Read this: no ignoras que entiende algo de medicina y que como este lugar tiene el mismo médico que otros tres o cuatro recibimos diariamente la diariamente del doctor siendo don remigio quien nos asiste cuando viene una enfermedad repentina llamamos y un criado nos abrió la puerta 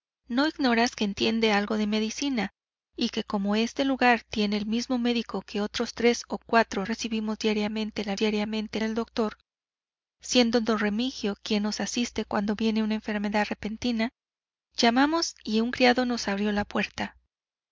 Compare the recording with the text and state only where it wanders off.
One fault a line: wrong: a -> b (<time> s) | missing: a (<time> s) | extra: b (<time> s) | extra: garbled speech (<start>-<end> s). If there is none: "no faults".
no faults